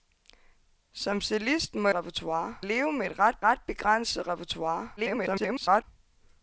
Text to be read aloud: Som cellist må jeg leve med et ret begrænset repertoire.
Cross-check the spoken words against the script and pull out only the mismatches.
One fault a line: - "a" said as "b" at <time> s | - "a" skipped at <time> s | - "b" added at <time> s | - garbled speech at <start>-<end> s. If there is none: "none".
- "jeg" said as "repertoire" at 1.9 s
- "ret" added at 3.4 s
- garbled speech at 5.0-5.8 s